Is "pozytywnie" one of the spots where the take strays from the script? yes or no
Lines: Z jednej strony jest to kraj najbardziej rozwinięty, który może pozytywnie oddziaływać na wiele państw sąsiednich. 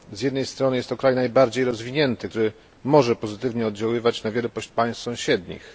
no